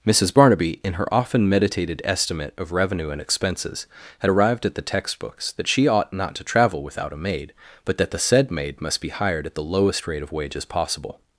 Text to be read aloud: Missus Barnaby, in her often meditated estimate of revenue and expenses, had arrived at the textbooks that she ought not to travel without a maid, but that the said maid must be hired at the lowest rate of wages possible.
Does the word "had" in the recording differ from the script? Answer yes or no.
no